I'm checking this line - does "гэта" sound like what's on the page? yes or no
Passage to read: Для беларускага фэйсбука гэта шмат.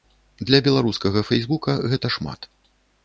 yes